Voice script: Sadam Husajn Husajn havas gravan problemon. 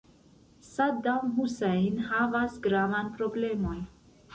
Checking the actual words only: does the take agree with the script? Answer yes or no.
no